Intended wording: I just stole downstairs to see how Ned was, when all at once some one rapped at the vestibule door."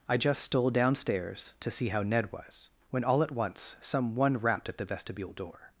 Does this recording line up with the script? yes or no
yes